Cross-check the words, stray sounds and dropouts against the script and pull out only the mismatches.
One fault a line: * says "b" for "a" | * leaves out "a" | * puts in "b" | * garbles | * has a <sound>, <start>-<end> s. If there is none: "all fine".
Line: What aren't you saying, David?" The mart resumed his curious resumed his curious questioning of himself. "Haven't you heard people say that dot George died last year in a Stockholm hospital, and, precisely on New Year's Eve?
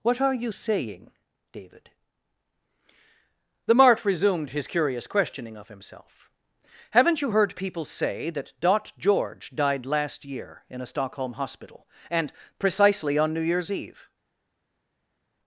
* says "are" for "aren't"
* leaves out "resumed his curious"